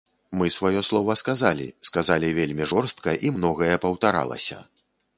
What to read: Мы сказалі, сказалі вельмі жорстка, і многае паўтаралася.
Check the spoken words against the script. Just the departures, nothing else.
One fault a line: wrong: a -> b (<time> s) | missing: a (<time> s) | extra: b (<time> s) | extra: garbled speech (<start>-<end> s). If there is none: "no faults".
extra: сваё слова (0.5 s)